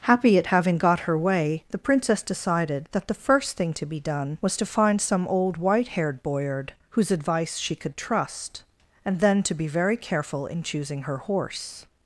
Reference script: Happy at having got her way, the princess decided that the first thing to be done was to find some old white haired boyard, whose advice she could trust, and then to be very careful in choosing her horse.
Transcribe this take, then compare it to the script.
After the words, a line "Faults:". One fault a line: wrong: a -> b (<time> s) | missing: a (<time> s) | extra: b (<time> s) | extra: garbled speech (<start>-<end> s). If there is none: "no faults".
Happy at having got her way, the princess decided that the first thing to be done was to find some old white haired boyard, whose advice she could trust, and then to be very careful in choosing her horse.
Faults:
no faults